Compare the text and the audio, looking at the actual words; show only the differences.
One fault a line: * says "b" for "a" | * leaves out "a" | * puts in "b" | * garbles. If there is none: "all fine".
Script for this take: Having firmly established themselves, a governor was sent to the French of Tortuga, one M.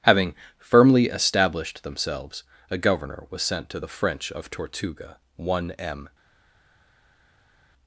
all fine